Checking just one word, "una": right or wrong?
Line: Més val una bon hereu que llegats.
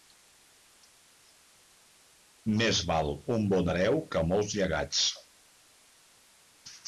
wrong